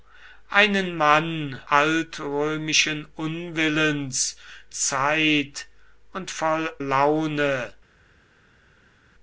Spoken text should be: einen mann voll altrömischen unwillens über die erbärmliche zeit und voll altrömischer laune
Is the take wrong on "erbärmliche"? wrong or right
wrong